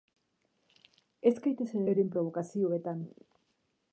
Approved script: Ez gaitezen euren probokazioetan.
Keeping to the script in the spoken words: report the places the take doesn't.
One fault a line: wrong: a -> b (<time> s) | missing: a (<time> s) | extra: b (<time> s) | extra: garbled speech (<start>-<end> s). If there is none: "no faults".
no faults